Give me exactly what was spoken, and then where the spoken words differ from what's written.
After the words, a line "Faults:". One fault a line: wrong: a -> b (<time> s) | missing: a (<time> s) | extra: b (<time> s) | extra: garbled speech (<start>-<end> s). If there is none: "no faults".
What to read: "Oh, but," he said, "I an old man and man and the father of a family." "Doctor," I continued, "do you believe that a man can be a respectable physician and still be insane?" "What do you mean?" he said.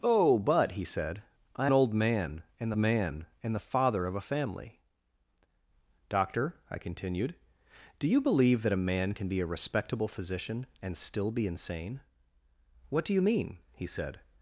"Oh, but," he said, "I an old man and man and the father of a family." "Doctor," I continued, "do you believe that a man can be a respectable physician and still be insane?" "What do you mean?" he said.
Faults:
no faults